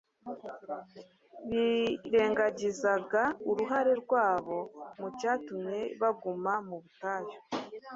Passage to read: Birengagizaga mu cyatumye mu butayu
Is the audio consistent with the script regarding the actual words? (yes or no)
no